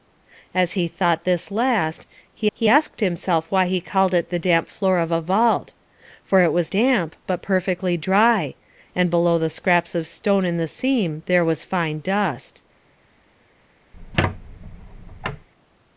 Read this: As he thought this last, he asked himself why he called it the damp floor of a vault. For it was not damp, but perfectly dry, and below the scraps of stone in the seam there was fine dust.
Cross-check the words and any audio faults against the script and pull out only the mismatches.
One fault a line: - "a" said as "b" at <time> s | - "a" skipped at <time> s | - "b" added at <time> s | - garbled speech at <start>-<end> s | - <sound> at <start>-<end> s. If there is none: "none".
- "he" added at 2.5 s
- "not" skipped at 6.7 s
- squeak at 13.9-15.5 s